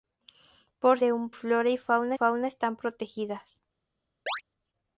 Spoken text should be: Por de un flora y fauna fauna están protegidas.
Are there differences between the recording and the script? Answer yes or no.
no